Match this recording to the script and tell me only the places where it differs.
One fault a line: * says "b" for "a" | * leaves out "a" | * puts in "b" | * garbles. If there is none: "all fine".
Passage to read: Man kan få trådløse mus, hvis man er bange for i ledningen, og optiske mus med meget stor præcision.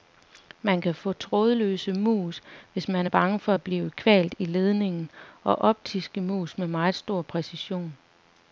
* puts in "at blive kvalt"